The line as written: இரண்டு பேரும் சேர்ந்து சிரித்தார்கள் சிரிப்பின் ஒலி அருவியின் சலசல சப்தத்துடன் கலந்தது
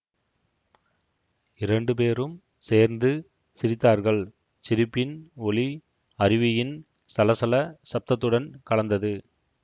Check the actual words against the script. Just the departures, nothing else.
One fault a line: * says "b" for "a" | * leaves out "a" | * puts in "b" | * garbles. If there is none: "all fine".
all fine